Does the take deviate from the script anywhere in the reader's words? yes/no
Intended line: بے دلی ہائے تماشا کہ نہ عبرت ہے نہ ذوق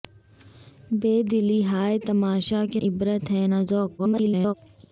yes